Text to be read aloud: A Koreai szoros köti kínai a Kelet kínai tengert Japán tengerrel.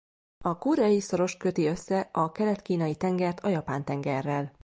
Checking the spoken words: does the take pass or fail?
fail